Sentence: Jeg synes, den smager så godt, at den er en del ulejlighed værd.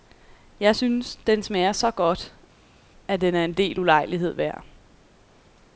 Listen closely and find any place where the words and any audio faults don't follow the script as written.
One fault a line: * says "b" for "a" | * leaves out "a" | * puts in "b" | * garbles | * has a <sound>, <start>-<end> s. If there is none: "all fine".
all fine